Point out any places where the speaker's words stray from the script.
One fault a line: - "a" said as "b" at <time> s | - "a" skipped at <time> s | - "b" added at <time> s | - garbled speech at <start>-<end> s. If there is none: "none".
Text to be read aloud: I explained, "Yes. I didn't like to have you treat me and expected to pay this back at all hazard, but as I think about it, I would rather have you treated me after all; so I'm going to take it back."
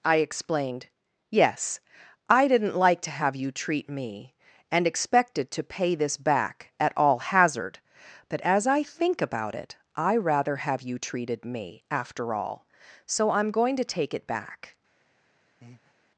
- "would" skipped at 10.2 s